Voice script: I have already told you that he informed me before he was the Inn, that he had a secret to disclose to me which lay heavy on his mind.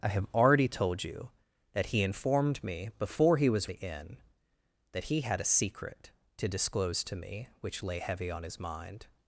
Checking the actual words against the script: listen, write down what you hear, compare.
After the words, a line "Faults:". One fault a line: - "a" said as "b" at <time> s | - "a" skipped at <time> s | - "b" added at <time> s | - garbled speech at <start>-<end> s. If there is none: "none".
I have already told you that he informed me before he was the Inn, that he had a secret to disclose to me which lay heavy on his mind.
Faults:
none